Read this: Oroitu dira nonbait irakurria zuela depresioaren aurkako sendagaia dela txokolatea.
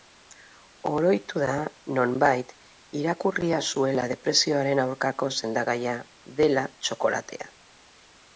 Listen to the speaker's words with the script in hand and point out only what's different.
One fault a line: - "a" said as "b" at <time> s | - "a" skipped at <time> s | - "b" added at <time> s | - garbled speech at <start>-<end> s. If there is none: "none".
- "dira" said as "da" at 1.4 s